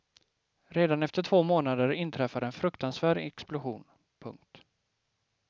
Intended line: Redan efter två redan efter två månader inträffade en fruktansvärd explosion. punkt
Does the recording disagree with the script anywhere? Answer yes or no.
yes